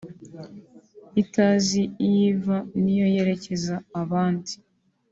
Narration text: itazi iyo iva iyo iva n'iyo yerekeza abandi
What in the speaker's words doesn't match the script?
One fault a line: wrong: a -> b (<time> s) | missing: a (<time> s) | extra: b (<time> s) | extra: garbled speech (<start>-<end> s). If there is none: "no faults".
missing: iyo iva (2.6 s)